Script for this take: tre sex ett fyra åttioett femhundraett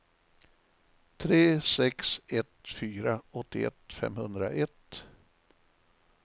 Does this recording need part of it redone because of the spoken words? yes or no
no